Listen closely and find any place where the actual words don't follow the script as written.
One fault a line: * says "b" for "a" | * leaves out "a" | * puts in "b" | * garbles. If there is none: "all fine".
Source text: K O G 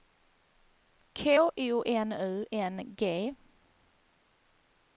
* puts in "N U N"